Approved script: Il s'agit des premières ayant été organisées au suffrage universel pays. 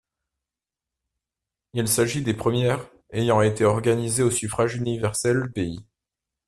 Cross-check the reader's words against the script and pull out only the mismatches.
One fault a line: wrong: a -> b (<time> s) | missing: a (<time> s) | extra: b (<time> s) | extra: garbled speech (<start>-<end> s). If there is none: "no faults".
no faults